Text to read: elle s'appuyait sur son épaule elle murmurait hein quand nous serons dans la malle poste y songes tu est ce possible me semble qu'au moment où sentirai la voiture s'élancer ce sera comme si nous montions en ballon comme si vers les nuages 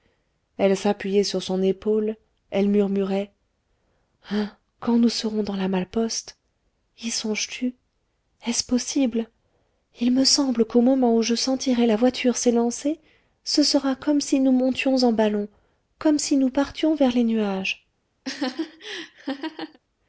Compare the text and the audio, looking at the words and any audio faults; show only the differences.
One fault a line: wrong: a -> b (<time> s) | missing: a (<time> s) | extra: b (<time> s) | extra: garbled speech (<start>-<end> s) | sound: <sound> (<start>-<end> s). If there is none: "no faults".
extra: il (10.0 s)
extra: je (11.2 s)
extra: nous partions (16.4 s)
sound: laugh (18.2-19.8 s)